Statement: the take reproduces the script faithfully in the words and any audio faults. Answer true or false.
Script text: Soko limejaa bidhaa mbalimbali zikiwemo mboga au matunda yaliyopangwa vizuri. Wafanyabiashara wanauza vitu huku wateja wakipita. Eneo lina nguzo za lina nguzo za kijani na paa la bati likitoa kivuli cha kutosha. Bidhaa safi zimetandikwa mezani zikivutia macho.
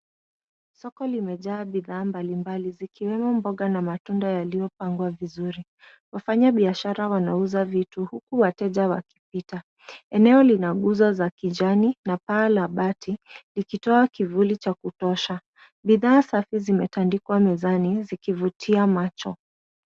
false